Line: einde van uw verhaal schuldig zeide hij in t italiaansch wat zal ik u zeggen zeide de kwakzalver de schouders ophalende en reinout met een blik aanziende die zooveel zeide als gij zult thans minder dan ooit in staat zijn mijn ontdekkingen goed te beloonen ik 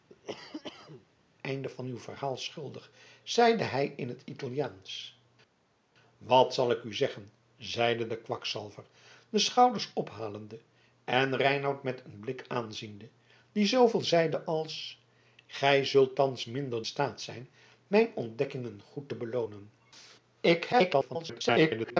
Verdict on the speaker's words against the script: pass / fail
fail